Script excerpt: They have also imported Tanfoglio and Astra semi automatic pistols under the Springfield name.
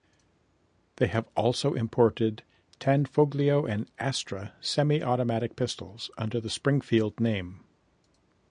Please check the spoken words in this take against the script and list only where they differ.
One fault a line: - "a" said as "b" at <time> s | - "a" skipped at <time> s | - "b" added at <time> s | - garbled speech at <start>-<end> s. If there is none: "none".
none